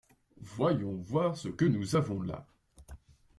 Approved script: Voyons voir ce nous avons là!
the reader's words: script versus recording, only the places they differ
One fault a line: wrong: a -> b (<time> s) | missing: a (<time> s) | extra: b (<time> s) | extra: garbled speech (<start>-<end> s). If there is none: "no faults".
extra: que (1.5 s)